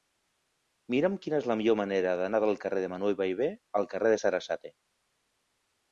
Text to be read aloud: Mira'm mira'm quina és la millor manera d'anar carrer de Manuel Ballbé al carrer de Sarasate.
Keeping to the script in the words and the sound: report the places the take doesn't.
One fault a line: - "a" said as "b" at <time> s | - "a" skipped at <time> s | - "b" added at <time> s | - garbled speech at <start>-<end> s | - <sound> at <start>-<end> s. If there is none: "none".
- "mira'm" skipped at 1.2 s
- "del" added at 2.5 s